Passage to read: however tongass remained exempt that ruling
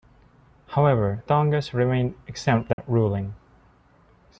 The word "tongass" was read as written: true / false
true